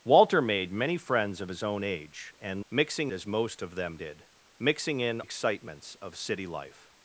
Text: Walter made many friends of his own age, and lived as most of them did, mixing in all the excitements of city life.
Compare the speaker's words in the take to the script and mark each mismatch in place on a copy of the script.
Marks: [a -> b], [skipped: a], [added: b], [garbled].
Walter made many friends of his own age, and [lived -> mixing] as most of them did, mixing in [skipped: all the] excitements of city life.